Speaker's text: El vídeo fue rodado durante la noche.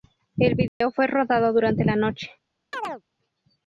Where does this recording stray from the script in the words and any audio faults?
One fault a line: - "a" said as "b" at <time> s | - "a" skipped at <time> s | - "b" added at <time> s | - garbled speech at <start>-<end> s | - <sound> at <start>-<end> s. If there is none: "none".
- dropout at 0.7-0.8 s
- chirp at 2.7-3.0 s